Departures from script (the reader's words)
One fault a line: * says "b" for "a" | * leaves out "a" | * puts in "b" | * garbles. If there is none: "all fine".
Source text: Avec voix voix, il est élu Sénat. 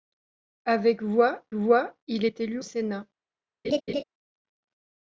all fine